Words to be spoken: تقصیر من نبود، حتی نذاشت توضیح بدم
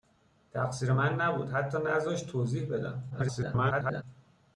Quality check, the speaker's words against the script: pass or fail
fail